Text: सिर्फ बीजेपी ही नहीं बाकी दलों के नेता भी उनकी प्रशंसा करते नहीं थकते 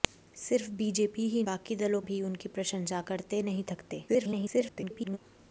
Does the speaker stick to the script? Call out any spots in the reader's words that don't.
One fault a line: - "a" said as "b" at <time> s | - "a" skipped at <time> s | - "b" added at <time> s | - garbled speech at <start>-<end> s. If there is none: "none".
- "नहीं" skipped at 1.4 s
- "के नेता" skipped at 2.0 s
- garbled speech at 4.1-5.2 s